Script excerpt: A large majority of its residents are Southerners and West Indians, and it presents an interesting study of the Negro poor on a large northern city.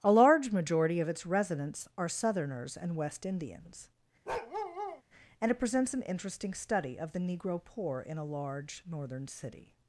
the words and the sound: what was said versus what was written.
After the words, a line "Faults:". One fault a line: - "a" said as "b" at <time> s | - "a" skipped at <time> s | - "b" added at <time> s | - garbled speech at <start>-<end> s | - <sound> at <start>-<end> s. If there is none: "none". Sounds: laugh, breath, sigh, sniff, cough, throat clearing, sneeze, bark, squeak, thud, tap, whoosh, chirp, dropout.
A large majority of its residents are Southerners and West Indians, and it presents an interesting study of the Negro poor in a large northern city.
Faults:
- bark at 4.3-5.0 s
- "on" said as "in" at 8.0 s